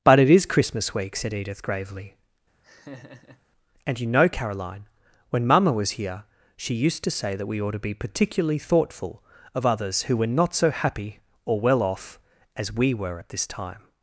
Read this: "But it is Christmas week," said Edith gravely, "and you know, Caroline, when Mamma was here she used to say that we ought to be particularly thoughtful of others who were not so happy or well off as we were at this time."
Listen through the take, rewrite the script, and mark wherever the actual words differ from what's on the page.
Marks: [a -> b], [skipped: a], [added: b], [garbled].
"But it is Christmas week," said Edith gravely, "and you know, Caroline, when Mamma was here she used to say that we ought to be particularly thoughtful of others who were not so happy or well off as we were at this time."